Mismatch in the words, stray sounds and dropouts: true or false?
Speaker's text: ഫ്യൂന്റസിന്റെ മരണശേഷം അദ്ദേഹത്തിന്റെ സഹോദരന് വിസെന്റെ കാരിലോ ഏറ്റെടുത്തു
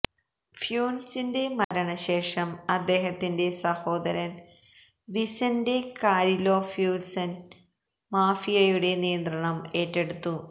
true